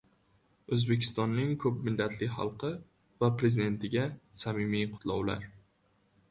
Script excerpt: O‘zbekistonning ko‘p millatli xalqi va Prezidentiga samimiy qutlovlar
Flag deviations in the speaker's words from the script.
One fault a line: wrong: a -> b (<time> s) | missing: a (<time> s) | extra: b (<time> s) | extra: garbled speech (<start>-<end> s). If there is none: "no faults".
no faults